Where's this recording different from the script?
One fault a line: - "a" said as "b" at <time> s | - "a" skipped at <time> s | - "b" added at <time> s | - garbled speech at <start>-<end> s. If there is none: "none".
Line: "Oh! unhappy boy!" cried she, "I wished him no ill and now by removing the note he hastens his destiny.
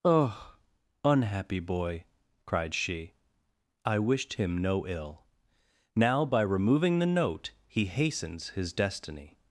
- "and" skipped at 5.2 s